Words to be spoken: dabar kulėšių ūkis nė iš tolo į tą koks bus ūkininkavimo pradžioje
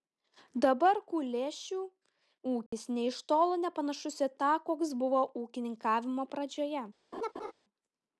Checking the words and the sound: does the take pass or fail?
fail